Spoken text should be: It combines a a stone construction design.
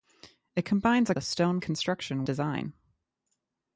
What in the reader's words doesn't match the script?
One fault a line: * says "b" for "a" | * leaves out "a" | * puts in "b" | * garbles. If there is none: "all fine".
all fine